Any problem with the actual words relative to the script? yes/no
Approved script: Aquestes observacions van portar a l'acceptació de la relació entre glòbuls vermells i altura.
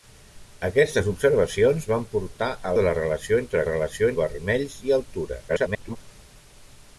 yes